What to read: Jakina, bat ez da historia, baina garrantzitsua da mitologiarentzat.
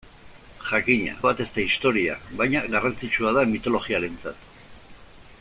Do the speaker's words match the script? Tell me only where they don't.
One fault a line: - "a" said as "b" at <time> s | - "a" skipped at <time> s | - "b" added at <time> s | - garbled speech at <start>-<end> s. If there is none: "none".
none